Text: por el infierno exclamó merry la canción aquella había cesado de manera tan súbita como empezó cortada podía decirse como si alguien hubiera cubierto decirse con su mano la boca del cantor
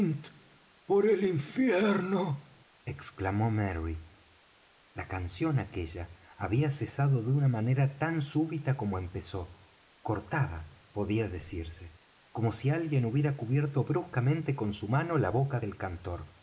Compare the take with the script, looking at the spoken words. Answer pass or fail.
fail